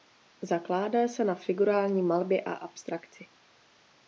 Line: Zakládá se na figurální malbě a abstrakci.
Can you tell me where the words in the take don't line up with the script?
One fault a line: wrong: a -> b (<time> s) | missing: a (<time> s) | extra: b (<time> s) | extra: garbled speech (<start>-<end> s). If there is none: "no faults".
no faults